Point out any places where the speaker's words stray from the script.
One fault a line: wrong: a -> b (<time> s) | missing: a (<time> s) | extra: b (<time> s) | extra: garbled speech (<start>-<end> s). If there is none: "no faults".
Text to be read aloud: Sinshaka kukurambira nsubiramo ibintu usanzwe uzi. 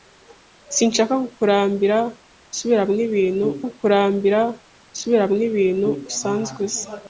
extra: kukurambira nsubiramo ibintu (3.7 s)